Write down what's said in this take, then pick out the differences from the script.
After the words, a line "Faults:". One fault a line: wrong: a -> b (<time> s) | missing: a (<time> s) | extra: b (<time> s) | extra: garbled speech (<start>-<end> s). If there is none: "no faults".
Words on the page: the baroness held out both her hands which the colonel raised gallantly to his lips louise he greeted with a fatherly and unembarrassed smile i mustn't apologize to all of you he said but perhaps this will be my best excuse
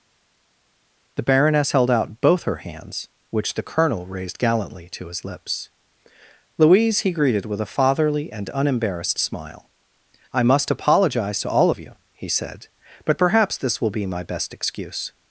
the baroness held out both her hands which the colonel raised gallantly to his lips louise he greeted with a fatherly and unembarrassed smile i must apologize to all of you he said but perhaps this will be my best excuse
Faults:
wrong: mustn't -> must (10.4 s)